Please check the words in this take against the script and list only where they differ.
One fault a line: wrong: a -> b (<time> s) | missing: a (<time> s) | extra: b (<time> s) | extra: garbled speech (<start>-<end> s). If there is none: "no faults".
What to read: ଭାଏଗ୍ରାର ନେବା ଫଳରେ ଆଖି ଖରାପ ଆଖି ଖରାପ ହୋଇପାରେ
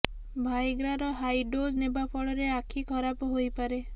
extra: ହାଇ ଡୋଜ୍ (1.2 s)
missing: ଆଖି ଖରାପ (3.3 s)